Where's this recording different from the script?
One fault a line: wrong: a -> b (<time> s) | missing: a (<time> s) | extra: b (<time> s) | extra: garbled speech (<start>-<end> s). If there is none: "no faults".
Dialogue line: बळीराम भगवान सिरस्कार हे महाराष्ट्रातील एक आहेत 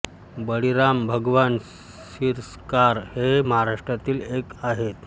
no faults